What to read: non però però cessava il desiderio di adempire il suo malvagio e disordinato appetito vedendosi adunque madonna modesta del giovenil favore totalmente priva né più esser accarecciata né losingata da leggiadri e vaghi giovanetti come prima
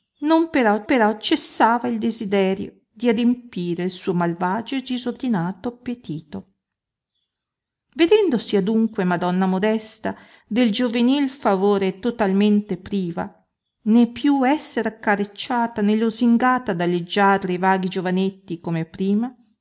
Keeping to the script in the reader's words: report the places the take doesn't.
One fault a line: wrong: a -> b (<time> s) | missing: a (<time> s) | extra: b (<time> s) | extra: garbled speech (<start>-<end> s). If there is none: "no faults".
no faults